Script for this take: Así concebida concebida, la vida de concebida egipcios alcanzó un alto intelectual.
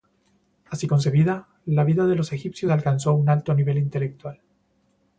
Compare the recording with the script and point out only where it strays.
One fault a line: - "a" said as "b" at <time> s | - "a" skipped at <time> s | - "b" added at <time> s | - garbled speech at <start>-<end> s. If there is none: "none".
- "concebida" skipped at 1.5 s
- "concebida" said as "los" at 2.1 s
- "nivel" added at 3.5 s